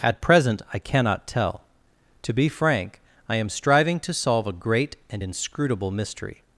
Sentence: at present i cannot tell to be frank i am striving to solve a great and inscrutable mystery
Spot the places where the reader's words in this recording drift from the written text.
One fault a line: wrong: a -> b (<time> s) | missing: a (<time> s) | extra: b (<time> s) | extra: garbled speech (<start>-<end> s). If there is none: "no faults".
no faults